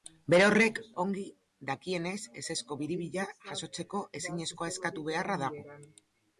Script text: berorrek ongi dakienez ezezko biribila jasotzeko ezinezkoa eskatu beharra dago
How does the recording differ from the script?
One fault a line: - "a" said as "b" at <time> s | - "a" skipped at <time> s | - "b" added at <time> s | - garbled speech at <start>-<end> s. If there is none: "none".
none